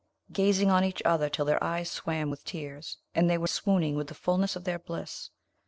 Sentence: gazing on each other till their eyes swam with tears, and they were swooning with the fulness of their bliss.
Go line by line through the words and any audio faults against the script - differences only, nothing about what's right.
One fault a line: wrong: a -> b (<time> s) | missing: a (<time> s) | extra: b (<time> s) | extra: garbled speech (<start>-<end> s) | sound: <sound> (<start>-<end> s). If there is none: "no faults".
no faults